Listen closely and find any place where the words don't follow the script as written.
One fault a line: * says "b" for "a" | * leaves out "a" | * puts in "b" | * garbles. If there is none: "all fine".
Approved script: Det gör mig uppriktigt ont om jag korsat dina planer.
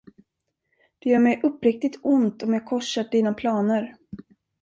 all fine